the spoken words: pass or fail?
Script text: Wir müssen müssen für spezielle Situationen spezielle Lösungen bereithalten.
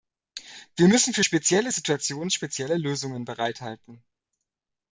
fail